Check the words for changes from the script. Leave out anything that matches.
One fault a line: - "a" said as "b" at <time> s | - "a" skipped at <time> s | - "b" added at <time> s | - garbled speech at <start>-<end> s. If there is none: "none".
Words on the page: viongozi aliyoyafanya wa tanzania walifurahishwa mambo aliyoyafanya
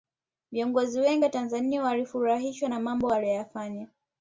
- "aliyoyafanya" said as "wengi" at 1.0 s
- "na" added at 2.7 s